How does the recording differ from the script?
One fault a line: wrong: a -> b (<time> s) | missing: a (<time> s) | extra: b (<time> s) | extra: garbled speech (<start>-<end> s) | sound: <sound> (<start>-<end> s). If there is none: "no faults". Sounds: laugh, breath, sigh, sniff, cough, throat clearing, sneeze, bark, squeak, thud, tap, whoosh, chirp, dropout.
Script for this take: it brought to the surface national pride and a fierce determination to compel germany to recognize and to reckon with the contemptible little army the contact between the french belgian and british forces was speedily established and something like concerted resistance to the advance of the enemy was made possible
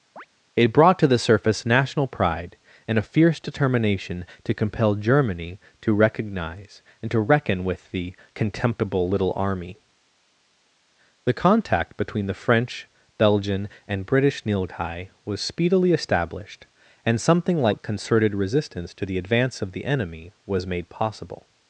sound: chirp (0.2-0.3 s)
wrong: forces -> nilghai (14.4 s)